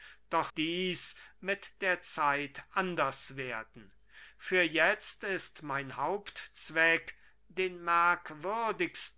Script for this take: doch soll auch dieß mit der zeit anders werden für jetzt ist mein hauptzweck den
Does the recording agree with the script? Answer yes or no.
no